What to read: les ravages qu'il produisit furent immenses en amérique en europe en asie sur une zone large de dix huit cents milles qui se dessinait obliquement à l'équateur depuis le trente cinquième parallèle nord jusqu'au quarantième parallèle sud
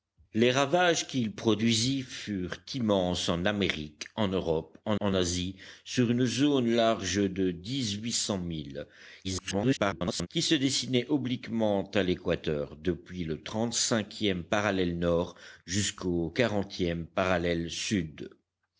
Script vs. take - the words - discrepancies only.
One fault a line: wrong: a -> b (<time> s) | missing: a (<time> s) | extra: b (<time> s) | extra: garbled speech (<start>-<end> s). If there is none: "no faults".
extra: en (5.0 s)
extra: garbled speech (9.2-10.3 s)